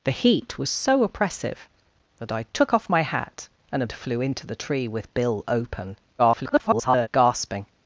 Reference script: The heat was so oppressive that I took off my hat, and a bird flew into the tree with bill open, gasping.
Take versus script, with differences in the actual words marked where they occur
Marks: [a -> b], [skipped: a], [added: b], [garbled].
The heat was so oppressive that I took off my hat, and a [skipped: bird] flew into the tree with bill open, [garbled] gasping.